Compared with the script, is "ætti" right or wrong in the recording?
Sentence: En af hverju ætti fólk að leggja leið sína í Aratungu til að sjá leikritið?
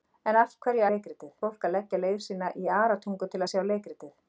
wrong